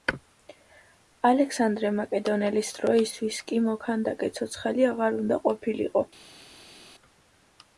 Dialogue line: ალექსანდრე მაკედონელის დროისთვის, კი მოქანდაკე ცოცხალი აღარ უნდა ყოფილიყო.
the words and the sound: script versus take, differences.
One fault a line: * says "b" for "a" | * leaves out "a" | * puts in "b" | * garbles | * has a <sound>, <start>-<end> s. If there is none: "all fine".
all fine